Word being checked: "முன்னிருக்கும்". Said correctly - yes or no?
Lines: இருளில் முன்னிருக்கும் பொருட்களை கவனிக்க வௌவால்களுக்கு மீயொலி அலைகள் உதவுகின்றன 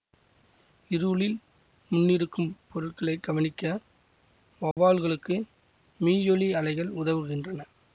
yes